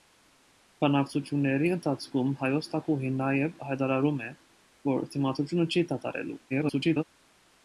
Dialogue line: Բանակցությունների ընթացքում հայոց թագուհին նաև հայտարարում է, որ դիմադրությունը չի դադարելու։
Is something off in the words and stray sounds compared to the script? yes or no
yes